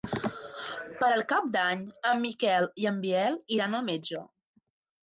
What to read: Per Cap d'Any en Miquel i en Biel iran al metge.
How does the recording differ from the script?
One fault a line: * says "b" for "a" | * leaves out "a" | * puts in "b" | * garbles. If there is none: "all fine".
all fine